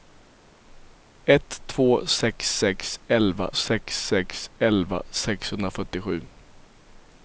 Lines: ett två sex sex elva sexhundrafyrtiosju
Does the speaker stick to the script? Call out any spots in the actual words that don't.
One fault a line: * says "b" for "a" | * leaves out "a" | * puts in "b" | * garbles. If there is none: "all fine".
* puts in "sex sex elva"